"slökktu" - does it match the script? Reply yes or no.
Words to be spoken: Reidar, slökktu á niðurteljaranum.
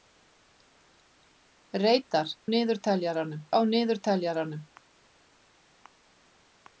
no